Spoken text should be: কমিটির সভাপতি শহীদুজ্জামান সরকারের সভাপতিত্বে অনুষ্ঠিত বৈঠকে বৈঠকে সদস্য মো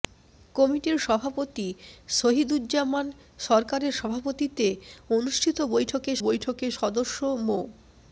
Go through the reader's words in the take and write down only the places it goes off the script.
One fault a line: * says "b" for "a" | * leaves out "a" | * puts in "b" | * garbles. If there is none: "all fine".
all fine